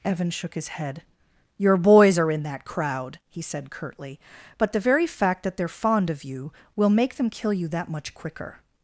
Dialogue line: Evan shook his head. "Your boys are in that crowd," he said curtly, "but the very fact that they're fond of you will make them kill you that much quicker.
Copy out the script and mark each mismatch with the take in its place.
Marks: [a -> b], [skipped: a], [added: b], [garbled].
Evan shook his head. "Your boys are in that crowd," he said curtly, "but the very fact that they're fond of you will make them kill you that much quicker.